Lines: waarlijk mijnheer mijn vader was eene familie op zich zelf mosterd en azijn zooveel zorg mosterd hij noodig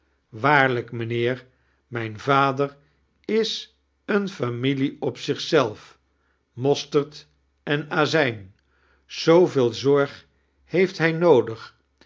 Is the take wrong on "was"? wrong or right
wrong